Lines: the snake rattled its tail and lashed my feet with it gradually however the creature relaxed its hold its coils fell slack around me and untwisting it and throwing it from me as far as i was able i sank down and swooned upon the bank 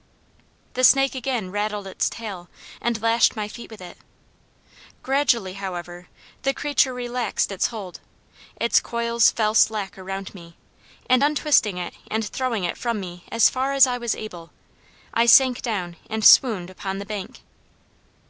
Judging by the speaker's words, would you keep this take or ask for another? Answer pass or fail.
fail